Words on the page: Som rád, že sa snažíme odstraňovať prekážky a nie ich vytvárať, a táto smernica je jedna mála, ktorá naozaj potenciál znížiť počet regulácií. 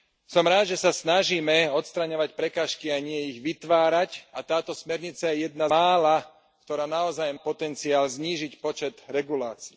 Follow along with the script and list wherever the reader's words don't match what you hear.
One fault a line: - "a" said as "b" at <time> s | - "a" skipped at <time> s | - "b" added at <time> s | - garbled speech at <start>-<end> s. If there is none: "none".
none